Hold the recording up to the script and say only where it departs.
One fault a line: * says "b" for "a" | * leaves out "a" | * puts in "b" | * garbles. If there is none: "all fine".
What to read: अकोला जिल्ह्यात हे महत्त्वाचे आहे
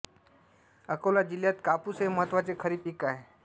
* puts in "कापूस"
* puts in "खरीप पीक"